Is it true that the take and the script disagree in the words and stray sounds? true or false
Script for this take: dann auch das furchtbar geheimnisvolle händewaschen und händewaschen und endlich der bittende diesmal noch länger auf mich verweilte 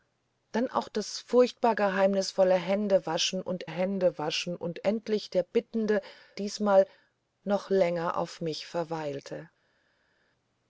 false